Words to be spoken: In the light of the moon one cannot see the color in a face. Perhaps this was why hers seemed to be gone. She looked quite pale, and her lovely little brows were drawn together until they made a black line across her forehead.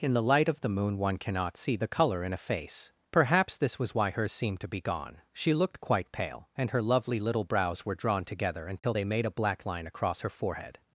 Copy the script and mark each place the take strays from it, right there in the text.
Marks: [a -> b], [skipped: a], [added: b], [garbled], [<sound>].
In the light of the moon one cannot see the color in a face. Perhaps this was why hers seemed to be gone. She looked quite pale, and her lovely little brows were drawn together until [dropout] they made a black line across her forehead.